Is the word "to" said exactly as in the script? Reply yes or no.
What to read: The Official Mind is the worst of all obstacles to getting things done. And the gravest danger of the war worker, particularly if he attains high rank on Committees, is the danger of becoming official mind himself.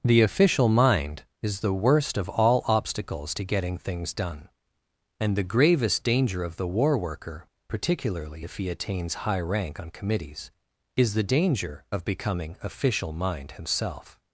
yes